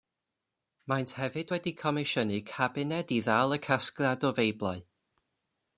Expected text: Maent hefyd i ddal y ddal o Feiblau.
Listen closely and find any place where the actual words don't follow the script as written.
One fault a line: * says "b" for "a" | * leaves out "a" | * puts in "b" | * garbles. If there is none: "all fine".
* puts in "wedi comisiynu cabined"
* says "casgliad" for "ddal"